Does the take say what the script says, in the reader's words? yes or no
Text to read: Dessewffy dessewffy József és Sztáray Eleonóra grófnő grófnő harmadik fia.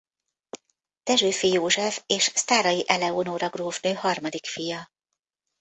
no